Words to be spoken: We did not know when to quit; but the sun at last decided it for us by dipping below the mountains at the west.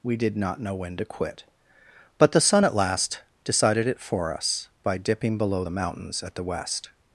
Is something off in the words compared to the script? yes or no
no